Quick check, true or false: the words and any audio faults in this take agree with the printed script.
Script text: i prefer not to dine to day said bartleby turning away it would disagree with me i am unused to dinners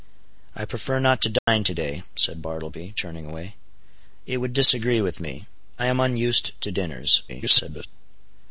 false